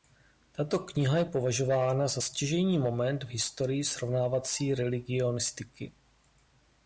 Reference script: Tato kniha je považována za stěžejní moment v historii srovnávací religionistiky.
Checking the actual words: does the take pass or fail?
pass